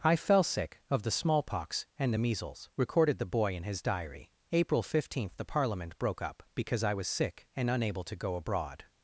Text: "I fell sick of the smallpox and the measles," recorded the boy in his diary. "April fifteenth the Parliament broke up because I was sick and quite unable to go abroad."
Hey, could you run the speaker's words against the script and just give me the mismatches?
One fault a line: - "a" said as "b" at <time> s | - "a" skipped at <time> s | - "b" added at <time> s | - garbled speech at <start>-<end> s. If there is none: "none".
- "quite" skipped at 7.7 s